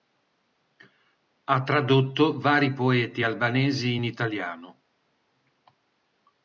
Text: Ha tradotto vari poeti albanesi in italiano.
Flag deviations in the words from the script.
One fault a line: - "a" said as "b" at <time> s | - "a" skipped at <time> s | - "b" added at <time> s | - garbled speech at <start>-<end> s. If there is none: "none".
none